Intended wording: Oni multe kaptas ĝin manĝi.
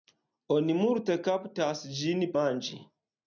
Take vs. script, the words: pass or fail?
pass